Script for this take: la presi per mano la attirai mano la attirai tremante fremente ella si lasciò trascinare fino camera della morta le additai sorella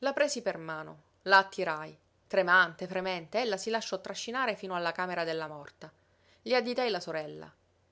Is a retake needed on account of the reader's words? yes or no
yes